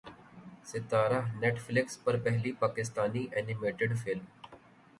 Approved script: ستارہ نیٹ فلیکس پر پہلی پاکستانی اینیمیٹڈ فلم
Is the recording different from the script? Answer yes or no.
no